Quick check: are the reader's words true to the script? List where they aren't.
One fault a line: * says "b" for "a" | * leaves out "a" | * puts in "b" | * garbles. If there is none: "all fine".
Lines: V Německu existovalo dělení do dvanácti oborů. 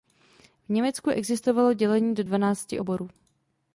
all fine